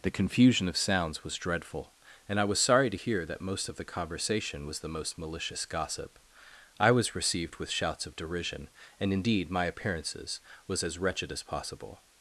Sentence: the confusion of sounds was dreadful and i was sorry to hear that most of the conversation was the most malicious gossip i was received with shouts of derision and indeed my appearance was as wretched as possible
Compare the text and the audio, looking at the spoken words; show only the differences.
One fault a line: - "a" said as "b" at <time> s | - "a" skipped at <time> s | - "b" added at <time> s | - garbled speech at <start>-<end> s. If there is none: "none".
- "appearance" said as "appearances" at 9.6 s